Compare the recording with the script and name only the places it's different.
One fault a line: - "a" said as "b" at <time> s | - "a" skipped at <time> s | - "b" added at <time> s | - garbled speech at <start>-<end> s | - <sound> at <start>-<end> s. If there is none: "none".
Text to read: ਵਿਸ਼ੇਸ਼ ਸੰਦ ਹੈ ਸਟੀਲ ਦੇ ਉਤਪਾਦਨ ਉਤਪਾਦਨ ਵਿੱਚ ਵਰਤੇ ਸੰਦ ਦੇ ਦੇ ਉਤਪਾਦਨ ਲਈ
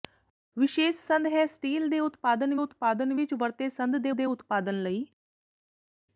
none